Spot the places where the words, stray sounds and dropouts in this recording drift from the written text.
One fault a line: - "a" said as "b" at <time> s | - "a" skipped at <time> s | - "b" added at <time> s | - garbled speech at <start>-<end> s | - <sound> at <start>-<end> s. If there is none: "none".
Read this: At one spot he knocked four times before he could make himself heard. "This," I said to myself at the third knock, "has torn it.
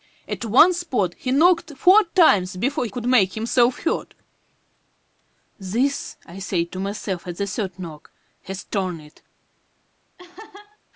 - "he" skipped at 2.9 s
- laugh at 10.2-10.8 s